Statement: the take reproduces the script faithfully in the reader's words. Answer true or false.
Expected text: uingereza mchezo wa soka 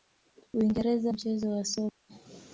true